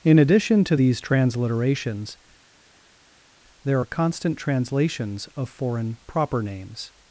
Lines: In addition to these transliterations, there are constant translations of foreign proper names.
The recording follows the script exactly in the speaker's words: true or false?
true